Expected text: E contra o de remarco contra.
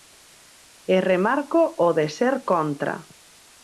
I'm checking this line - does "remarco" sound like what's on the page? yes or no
no